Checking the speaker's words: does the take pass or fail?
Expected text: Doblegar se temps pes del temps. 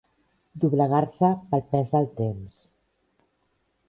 fail